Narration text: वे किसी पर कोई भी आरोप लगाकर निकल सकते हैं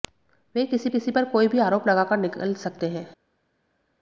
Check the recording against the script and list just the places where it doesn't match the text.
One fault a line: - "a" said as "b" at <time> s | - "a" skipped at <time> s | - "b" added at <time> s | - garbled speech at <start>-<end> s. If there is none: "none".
- "किसी" added at 0.9 s